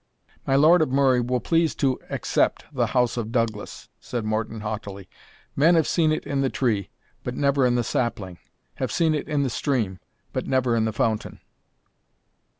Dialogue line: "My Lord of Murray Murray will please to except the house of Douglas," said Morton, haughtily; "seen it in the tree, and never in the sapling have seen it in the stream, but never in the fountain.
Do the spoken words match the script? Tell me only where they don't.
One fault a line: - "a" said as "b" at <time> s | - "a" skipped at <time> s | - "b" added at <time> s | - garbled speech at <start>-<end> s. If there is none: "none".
- "Murray" skipped at 1.2 s
- "men have" added at 5.6 s
- "and" said as "but" at 7.2 s